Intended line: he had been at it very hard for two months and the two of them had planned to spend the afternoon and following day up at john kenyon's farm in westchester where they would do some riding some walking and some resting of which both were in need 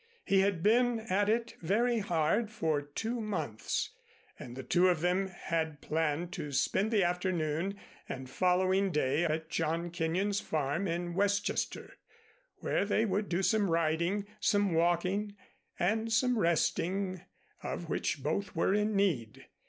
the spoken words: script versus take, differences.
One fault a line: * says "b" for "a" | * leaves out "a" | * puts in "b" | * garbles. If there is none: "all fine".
* leaves out "up"